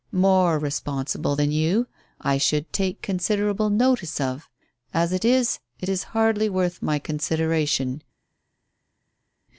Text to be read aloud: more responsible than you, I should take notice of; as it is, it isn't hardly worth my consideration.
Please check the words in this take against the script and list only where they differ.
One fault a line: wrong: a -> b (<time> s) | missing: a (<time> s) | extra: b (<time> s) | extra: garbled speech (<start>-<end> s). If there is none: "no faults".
extra: considerable (3.0 s)
wrong: isn't -> is (5.9 s)